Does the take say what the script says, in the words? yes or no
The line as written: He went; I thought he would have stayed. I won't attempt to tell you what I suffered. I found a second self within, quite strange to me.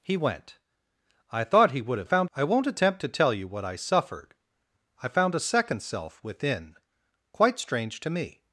no